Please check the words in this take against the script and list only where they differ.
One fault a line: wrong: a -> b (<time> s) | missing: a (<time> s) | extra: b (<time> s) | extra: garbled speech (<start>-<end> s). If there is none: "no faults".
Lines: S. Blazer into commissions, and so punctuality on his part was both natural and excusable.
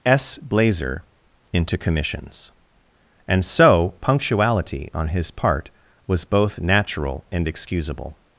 no faults